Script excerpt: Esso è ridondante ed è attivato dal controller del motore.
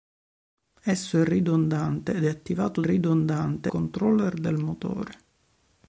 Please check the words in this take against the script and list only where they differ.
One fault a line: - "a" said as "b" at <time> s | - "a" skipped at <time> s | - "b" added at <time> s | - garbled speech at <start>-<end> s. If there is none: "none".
- "dal" said as "ridondante" at 2.8 s